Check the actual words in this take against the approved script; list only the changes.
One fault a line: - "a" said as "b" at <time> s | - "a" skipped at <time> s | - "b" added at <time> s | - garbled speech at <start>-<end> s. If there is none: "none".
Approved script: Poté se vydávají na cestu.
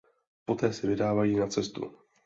none